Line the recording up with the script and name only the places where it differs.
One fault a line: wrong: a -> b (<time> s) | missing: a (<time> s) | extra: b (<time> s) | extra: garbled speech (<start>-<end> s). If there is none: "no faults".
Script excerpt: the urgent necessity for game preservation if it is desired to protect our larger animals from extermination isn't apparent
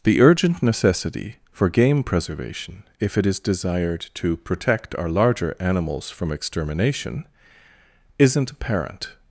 no faults